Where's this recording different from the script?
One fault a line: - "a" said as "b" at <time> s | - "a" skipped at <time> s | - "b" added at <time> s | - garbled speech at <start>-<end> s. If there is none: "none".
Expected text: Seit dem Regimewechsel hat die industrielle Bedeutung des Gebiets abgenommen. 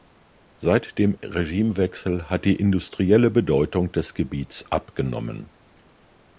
none